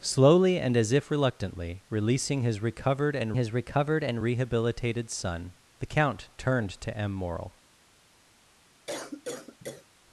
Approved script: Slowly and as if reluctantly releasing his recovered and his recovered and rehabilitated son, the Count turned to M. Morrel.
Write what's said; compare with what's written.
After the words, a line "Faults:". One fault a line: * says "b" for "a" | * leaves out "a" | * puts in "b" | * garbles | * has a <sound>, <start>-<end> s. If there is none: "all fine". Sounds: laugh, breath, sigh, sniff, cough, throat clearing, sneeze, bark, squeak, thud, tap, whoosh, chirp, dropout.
Slowly and as if reluctantly releasing his recovered and his recovered and rehabilitated son, the Count turned to M. Morrel.
Faults:
* has a cough, 8.9-9.9 s